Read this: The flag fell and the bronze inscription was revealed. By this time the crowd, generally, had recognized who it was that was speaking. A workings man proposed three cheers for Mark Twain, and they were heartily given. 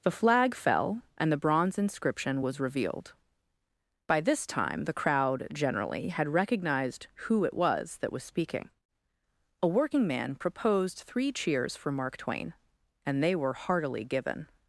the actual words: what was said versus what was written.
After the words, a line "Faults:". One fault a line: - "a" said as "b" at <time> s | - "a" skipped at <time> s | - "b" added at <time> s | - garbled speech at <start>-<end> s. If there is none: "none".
The flag fell and the bronze inscription was revealed. By this time the crowd, generally, had recognized who it was that was speaking. A working man proposed three cheers for Mark Twain, and they were heartily given.
Faults:
- "workings" said as "working" at 9.7 s